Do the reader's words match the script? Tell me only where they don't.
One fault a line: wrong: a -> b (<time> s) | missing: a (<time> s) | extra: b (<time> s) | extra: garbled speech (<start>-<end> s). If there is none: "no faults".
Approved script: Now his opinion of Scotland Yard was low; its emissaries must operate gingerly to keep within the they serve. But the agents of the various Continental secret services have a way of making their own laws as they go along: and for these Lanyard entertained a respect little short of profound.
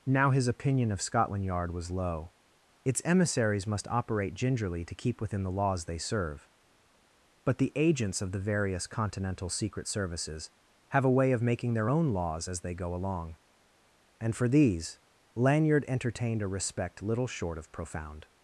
extra: laws (5.5 s)